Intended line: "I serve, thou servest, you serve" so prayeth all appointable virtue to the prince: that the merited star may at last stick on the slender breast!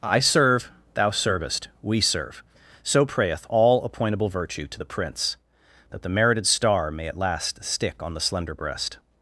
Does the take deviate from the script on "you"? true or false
true